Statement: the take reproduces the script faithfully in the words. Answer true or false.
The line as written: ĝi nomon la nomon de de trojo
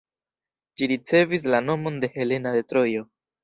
false